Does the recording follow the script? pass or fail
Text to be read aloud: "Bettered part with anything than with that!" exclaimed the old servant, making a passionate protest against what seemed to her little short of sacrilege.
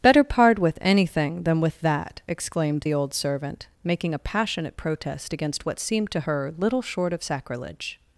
fail